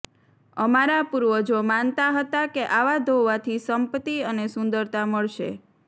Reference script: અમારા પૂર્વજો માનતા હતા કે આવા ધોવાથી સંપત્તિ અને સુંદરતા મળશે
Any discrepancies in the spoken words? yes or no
no